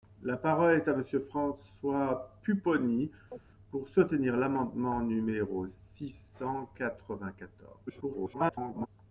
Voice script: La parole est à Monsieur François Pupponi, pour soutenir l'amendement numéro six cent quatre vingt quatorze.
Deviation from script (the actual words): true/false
true